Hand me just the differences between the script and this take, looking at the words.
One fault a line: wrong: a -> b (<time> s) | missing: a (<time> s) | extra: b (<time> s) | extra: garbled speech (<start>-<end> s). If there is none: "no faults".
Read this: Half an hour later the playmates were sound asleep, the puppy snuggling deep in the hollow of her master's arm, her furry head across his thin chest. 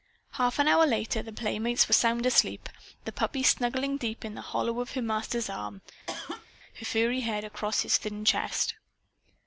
no faults